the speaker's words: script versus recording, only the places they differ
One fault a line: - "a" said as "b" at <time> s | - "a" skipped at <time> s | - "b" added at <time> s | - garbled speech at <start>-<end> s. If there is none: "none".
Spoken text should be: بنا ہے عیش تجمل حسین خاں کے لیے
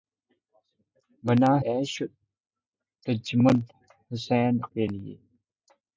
- "ہے" skipped at 1.5 s
- "خاں" skipped at 4.5 s